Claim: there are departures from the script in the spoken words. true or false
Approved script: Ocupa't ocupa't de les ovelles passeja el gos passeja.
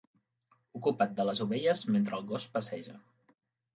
true